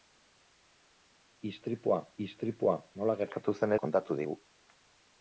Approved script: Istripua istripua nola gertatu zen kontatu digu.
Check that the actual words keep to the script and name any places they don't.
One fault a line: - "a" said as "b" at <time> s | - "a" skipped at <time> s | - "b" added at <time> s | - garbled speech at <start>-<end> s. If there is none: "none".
none